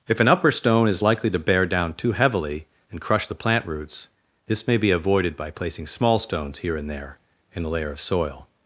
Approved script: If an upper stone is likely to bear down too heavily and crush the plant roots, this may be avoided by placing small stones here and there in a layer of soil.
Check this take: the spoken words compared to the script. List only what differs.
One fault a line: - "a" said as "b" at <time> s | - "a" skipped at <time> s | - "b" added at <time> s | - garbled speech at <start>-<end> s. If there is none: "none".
none